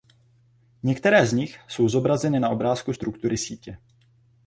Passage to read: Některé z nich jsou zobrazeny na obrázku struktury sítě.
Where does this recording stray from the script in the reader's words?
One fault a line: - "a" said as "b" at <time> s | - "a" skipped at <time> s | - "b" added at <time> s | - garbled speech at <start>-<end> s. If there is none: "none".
none